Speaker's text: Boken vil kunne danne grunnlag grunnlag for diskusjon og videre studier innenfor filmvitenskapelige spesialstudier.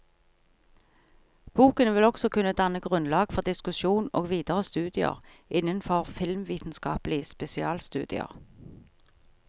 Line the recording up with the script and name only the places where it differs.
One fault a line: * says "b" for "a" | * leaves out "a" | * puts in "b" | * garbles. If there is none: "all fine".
* puts in "også"
* leaves out "grunnlag"